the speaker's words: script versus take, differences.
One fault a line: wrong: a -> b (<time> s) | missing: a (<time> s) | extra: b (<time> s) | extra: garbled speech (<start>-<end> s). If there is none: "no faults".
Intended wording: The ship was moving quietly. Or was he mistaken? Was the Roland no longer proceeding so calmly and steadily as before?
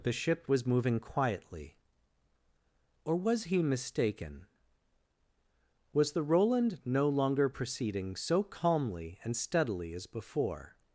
no faults